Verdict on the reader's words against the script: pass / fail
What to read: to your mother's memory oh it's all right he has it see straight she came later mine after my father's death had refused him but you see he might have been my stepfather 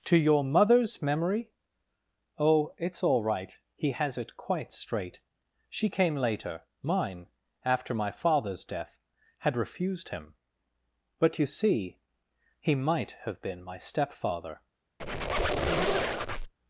fail